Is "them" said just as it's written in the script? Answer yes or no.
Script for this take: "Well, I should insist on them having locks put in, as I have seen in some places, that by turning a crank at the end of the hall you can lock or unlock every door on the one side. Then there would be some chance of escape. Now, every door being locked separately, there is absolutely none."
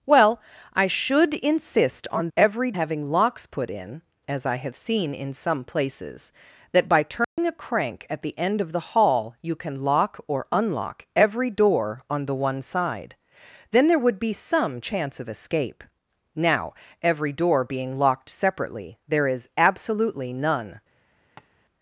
no